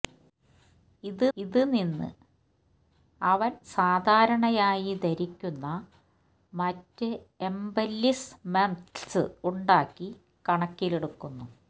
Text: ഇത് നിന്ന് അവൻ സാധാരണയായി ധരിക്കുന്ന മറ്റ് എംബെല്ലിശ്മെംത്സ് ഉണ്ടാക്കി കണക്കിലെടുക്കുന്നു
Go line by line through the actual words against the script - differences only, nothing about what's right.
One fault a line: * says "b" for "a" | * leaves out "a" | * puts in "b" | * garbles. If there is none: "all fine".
* puts in "ഇത്"